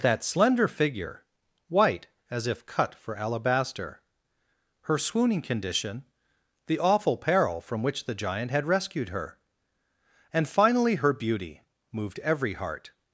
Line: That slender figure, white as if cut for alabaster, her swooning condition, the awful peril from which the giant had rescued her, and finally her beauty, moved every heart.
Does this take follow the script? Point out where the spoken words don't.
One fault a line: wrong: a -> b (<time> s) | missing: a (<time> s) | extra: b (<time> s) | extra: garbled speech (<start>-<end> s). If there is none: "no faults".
no faults